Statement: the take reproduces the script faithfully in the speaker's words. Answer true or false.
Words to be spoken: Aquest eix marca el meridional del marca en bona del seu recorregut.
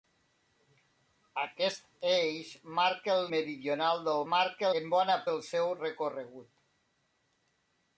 true